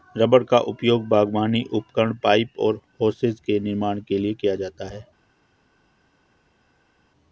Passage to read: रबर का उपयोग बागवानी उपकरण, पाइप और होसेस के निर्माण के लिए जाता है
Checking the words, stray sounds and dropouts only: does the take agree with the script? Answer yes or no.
no